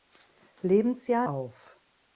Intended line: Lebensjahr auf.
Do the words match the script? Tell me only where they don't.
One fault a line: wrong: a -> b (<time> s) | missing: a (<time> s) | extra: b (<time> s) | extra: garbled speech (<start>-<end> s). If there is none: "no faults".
no faults